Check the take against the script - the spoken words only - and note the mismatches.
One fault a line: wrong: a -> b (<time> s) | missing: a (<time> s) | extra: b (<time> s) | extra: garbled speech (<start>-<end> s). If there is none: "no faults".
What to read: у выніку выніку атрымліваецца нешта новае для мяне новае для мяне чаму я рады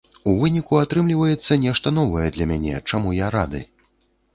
missing: выніку (0.8 s)
missing: новае для мяне (2.9 s)